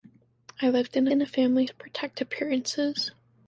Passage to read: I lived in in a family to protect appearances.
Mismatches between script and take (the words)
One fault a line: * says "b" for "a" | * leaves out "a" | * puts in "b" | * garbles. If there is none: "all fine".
all fine